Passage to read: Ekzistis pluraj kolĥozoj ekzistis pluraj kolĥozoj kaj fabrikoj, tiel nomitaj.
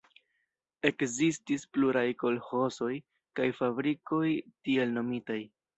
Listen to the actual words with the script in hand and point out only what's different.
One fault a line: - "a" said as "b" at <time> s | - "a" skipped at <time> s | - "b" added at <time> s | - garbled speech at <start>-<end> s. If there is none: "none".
- "ekzistis pluraj kolĥozoj" skipped at 2.9 s